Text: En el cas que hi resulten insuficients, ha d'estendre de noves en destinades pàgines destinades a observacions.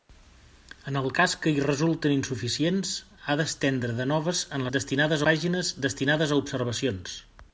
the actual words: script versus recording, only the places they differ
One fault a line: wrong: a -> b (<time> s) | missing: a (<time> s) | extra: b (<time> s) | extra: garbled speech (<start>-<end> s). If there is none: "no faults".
no faults